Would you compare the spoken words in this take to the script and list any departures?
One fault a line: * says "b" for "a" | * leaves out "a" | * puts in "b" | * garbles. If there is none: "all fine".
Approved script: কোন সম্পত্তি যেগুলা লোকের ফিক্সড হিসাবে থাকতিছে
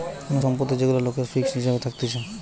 all fine